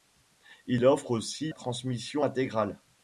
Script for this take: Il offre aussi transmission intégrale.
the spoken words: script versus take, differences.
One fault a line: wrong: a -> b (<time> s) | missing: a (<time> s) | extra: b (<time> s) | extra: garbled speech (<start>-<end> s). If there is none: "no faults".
no faults